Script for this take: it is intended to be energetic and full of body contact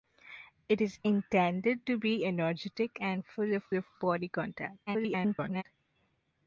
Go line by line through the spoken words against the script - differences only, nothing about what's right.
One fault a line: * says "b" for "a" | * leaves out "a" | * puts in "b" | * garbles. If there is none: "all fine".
* puts in "of"
* garbles